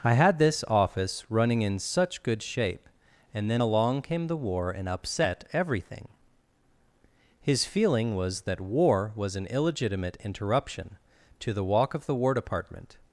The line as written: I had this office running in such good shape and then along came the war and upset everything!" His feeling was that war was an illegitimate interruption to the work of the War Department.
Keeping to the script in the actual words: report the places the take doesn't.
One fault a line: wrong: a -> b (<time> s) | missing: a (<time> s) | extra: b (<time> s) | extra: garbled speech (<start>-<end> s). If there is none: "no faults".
wrong: work -> walk (11.6 s)